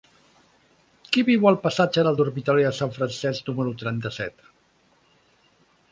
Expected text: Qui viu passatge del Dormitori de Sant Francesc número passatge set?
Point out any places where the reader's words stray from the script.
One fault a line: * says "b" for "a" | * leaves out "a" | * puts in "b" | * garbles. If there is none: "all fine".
* puts in "al"
* says "trenta" for "passatge"